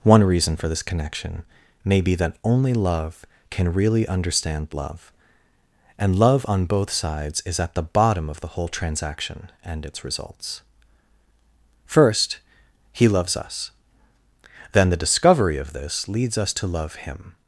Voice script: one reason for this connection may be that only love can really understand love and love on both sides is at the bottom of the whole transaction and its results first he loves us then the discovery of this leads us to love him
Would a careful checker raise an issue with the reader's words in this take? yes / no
no